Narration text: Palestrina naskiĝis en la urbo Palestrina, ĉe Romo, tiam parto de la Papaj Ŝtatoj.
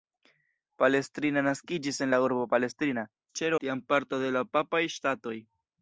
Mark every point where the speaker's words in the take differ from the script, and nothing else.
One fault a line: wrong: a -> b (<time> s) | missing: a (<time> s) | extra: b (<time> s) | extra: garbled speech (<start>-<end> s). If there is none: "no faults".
missing: Romo (3.5 s)